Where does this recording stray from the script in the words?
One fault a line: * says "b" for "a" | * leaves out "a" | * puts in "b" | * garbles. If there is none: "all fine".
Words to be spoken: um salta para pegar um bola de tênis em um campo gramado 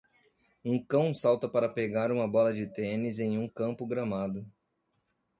* puts in "cão"
* says "uma" for "um"